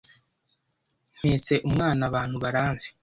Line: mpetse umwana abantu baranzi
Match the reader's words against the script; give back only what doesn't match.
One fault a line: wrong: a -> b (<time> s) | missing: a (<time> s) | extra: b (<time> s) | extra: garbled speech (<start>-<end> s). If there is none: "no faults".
no faults